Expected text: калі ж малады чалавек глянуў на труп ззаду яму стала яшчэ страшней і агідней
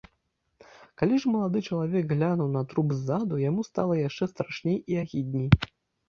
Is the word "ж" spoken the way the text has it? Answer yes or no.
yes